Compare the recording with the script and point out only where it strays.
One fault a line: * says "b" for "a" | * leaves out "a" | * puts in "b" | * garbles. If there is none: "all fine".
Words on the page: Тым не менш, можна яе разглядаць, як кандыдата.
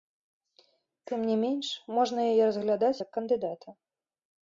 all fine